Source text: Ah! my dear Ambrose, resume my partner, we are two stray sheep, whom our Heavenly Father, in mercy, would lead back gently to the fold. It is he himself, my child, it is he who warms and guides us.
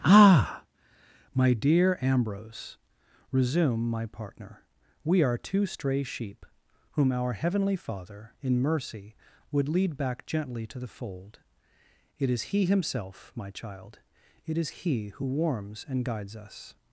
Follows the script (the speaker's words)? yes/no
yes